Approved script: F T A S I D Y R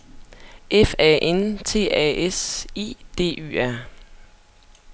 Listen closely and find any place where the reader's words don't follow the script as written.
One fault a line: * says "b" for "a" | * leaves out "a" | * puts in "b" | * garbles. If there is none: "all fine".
* puts in "A N"